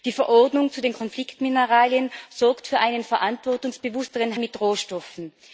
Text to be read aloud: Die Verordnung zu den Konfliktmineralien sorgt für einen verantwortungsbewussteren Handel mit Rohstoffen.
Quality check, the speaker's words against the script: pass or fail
fail